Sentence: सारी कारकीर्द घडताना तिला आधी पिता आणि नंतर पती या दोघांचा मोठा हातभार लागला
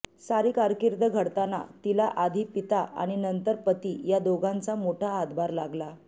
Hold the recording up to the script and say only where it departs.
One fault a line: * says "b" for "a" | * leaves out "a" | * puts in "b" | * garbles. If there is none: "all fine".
all fine